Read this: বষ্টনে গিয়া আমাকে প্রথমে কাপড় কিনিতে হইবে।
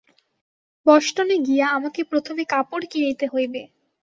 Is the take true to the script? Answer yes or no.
yes